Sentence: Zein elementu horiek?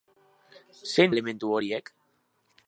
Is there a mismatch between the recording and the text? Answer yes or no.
no